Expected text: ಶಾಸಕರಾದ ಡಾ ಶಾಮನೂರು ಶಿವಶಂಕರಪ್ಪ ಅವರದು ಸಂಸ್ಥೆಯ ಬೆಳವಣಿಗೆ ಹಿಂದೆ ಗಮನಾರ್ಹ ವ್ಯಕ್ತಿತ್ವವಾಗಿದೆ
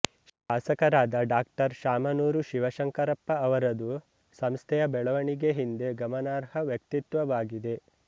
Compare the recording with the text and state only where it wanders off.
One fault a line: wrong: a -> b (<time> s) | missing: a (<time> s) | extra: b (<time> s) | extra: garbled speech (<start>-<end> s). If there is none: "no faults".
no faults